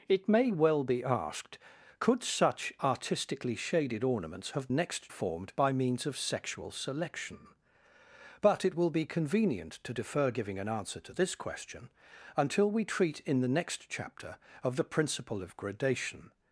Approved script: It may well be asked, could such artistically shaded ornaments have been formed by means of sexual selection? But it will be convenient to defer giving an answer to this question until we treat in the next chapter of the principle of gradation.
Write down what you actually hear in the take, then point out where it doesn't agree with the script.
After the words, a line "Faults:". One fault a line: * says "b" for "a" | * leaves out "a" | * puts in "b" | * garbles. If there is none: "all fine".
It may well be asked, could such artistically shaded ornaments have next formed by means of sexual selection? But it will be convenient to defer giving an answer to this question until we treat in the next chapter of the principle of gradation.
Faults:
* says "next" for "been"